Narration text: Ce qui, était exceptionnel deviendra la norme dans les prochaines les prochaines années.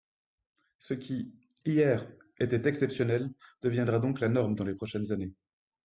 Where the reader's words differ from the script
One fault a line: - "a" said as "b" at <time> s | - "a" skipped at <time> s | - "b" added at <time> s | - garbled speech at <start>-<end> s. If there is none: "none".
- "hier" added at 1.6 s
- "donc" added at 4.0 s
- "les prochaines" skipped at 5.1 s